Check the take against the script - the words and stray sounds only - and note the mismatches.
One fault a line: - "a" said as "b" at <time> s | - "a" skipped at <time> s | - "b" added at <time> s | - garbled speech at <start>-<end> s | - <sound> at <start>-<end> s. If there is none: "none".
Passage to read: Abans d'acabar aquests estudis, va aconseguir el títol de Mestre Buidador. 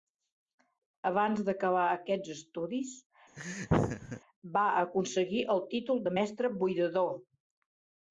- laugh at 3.4-4.2 s